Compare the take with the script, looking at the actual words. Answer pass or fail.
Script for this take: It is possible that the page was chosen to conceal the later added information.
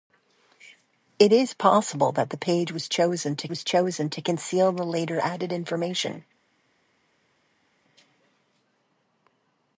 fail